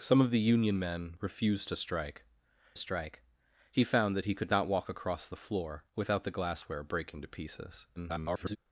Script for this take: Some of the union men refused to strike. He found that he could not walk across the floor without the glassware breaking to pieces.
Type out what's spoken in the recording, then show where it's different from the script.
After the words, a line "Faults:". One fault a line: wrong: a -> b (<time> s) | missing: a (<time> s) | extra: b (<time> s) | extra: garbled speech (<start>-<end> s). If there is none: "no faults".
Some of the union men refused to strike strike. He found that he could not walk across the floor without the glassware breaking to pieces. [garbled]
Faults:
extra: strike (2.8 s)
extra: garbled speech (8.0-8.6 s)